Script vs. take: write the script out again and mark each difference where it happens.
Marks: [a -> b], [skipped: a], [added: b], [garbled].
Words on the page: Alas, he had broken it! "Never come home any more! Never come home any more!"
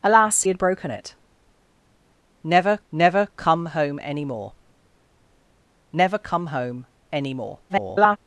Alas, [skipped: he] had broken it! "Never [added: never] come home any more! Never come home any more!" [garbled]